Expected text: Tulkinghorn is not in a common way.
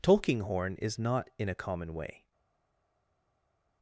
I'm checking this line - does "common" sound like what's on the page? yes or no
yes